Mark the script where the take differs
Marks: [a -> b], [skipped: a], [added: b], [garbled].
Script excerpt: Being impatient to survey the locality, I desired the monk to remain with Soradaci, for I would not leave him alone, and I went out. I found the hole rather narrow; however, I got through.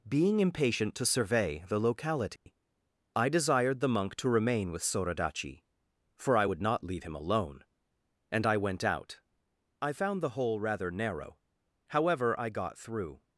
Being impatient to survey the locality, I desired the monk to remain with Soradaci, for I would not leave him alone, and I went out. I found the hole rather narrow; however, I got through.